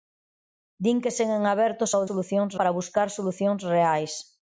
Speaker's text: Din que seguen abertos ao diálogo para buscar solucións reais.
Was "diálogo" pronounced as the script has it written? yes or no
no